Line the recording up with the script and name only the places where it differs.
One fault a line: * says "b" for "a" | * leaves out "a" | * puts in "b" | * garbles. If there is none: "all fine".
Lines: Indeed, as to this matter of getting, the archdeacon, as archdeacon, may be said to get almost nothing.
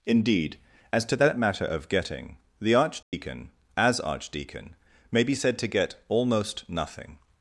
* says "that" for "this"